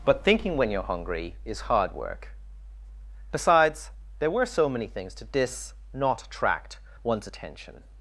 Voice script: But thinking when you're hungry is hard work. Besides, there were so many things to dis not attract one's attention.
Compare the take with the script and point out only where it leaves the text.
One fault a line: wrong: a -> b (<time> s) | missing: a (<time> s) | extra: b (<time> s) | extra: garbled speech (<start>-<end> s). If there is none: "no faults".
no faults